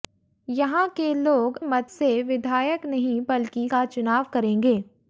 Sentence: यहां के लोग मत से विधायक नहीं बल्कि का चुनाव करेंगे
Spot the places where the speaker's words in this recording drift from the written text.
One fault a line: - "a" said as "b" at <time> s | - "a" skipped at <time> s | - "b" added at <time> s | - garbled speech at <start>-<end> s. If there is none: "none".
none